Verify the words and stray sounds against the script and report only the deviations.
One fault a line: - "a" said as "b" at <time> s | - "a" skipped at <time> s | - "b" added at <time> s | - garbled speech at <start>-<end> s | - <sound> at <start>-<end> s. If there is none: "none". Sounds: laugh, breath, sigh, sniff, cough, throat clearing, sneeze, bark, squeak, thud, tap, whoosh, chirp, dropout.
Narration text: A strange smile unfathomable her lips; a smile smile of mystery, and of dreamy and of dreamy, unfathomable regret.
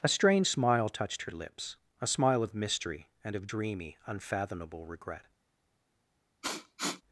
- "unfathomable" said as "touched" at 0.9 s
- "smile" skipped at 2.4 s
- "and of dreamy" skipped at 4.0 s
- sniff at 6.4-7.0 s